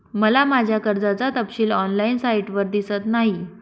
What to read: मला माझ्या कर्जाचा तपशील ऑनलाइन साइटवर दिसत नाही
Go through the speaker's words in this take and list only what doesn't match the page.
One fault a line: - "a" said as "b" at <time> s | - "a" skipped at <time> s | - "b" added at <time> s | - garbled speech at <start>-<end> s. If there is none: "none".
none